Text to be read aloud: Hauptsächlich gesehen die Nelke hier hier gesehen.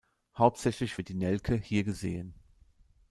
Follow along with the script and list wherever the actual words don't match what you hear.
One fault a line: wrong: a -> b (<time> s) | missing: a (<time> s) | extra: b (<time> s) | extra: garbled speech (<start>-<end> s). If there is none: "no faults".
wrong: gesehen -> wird (1.0 s)
missing: hier (1.8 s)